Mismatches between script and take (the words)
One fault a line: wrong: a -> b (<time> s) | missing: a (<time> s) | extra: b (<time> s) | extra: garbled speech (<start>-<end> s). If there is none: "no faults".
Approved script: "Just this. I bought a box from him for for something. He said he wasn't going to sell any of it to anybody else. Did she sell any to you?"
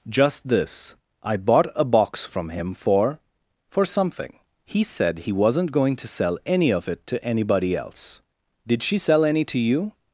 no faults